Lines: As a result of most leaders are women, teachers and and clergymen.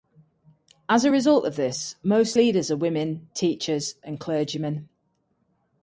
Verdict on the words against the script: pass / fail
fail